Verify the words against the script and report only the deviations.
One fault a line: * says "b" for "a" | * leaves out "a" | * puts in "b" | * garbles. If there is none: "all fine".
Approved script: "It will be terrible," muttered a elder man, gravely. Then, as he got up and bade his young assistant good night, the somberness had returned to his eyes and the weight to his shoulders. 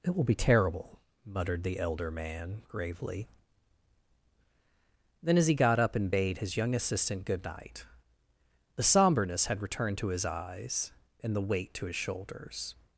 * says "the" for "a"